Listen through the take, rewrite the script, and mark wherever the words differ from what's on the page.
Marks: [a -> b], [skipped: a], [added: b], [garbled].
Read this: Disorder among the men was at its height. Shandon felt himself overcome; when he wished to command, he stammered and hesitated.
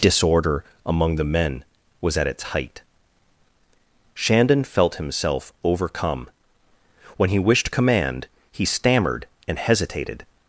Disorder among the men was at its height. Shandon felt himself overcome; when he wished [skipped: to] command, he stammered and hesitated.